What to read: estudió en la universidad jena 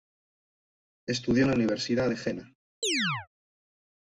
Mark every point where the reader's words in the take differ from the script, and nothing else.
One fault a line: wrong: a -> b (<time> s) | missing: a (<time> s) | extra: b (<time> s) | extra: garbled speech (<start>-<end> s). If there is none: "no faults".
extra: de (2.1 s)